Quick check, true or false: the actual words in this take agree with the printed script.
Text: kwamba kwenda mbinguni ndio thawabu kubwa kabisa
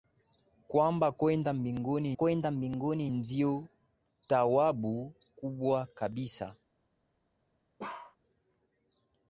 false